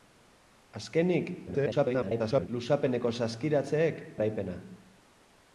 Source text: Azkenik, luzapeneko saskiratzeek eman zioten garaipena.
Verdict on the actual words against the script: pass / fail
fail